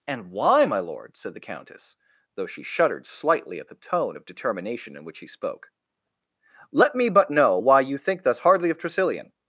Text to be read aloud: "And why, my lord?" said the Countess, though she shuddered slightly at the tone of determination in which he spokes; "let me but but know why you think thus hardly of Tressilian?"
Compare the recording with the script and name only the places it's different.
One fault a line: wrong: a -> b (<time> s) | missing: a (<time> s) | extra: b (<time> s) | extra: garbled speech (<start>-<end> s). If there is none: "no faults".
wrong: spokes -> spoke (5.3 s)
missing: but (7.3 s)